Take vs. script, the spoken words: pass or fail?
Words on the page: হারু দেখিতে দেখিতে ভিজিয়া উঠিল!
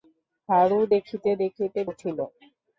fail